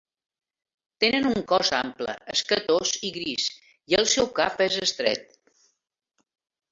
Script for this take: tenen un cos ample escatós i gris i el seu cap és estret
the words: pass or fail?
pass